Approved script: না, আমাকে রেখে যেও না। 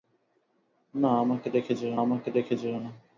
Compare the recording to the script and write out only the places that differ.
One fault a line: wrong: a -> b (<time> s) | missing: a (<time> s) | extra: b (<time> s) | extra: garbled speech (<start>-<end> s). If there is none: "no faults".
extra: আমাকে রেখে যেও (2.0 s)